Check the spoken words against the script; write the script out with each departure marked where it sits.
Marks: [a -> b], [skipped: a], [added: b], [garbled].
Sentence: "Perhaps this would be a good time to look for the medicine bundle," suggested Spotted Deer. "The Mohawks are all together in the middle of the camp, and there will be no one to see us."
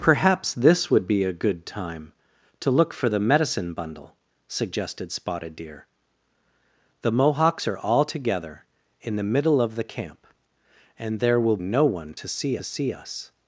"Perhaps this would be a good time to look for the medicine bundle," suggested Spotted Deer. "The Mohawks are all together in the middle of the camp, and there will [skipped: be] no one to see [added: see] us."